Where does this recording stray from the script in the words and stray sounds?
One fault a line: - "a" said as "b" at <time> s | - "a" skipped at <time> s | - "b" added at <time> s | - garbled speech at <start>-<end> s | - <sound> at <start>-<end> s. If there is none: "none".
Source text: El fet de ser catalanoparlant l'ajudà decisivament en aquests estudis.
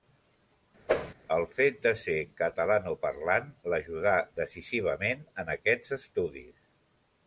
- whoosh at 0.9-1.1 s